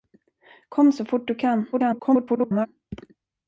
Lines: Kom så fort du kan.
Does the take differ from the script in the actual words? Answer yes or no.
yes